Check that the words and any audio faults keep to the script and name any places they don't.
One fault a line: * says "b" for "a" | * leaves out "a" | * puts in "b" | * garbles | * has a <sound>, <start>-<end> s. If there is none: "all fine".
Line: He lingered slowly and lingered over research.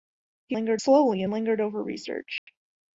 * has a dropout, 2.4-2.5 s